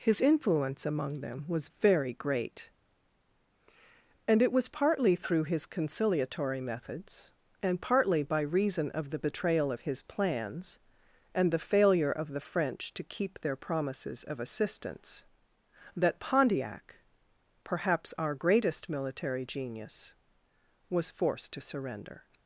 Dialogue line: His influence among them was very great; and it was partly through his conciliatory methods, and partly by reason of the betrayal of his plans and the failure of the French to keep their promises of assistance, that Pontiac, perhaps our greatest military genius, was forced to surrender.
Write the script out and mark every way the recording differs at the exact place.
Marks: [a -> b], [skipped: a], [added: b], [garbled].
His influence among them was very great; and it was partly through his conciliatory methods, and partly by reason of the betrayal of his plans and the failure of the French to keep their promises of assistance, that Pontiac, perhaps our greatest military genius, was forced to surrender.